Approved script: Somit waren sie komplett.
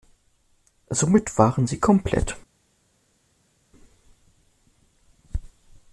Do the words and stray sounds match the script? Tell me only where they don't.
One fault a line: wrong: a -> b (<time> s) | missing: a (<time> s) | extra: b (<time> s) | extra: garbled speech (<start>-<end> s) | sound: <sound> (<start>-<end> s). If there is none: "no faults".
no faults